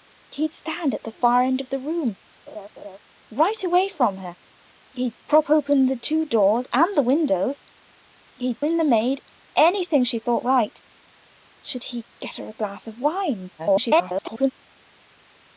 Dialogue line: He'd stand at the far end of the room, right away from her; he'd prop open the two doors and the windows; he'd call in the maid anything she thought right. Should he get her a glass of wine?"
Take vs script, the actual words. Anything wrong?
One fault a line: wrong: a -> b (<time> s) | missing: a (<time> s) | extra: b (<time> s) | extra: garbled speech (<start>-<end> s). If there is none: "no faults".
missing: call (8.6 s)
extra: garbled speech (13.6-14.5 s)